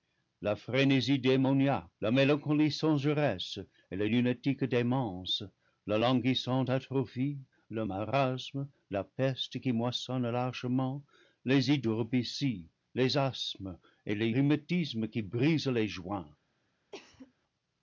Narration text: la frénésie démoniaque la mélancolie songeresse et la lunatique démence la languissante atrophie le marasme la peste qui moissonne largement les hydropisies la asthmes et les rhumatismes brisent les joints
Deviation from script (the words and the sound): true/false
true